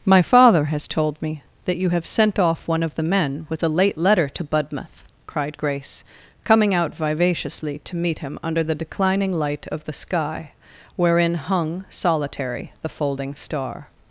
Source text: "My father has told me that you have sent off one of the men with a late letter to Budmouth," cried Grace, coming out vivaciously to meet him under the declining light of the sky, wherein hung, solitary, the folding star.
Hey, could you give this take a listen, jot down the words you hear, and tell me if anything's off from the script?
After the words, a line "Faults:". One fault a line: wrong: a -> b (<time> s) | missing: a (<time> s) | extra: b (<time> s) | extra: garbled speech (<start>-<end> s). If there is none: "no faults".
"My father has told me that you have sent off one of the men with a late letter to Budmouth," cried Grace, coming out vivaciously to meet him under the declining light of the sky, wherein hung, solitary, the folding star.
Faults:
no faults